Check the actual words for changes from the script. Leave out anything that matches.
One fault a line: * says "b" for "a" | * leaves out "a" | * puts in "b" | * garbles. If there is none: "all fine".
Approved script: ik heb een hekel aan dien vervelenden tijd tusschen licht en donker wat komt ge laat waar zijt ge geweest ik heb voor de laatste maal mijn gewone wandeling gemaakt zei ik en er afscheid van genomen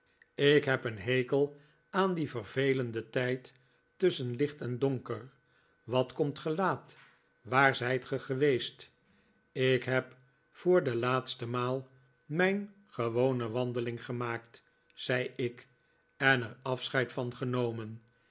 all fine